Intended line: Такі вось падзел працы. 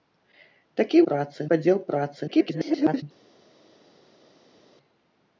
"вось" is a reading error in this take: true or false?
true